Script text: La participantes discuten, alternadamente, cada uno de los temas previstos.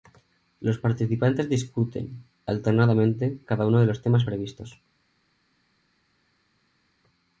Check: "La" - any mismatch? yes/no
yes